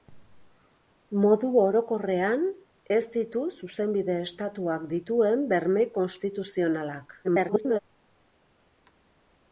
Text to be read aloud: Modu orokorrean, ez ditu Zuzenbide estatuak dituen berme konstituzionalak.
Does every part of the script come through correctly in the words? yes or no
no